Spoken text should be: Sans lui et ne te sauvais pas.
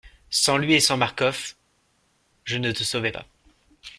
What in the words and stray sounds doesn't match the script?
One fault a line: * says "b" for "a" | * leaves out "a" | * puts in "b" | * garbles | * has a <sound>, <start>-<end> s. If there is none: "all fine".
* puts in "sans Marcof je"